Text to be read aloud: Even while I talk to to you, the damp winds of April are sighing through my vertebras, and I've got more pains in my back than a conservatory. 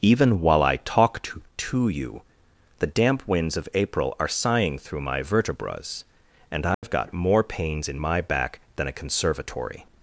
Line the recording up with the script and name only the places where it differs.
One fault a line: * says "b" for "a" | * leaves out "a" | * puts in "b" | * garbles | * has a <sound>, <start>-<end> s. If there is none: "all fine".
* has a dropout, 6.7-6.8 s